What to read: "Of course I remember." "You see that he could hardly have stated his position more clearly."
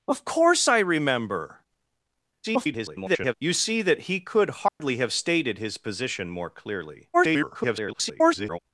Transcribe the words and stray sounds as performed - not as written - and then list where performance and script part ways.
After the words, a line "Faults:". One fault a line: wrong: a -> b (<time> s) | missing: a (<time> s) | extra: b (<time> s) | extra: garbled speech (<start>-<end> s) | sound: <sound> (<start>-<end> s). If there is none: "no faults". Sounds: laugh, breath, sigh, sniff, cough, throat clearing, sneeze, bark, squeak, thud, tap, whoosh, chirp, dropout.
"Of course I remember." [garbled] "You see that he could hardly have stated his position more clearly." [garbled]
Faults:
extra: garbled speech (2.4-3.3 s)
sound: dropout (4.7-4.8 s)
extra: garbled speech (7.1-8.6 s)